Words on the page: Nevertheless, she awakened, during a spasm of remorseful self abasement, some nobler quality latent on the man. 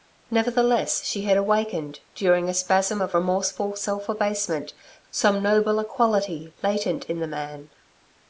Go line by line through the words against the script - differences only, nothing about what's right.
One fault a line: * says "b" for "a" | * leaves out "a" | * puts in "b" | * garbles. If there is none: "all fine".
* puts in "had"
* says "in" for "on"